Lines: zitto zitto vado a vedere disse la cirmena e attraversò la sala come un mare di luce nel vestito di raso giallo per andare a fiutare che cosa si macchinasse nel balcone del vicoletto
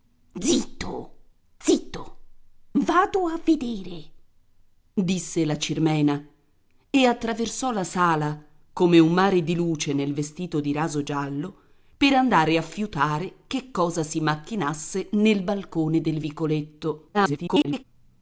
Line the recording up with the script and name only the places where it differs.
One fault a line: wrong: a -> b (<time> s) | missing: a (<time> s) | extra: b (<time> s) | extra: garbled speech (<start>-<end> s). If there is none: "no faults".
extra: garbled speech (17.1-17.8 s)